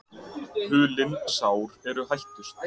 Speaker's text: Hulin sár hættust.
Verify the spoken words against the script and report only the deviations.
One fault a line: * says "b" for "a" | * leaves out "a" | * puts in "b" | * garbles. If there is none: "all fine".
* puts in "eru"